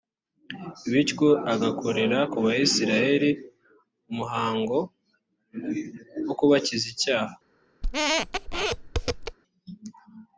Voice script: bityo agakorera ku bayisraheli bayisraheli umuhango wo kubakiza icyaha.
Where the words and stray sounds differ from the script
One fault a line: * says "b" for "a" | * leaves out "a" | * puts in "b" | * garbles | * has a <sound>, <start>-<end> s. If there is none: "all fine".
* leaves out "bayisraheli"
* has a squeak, 7.8-9.4 s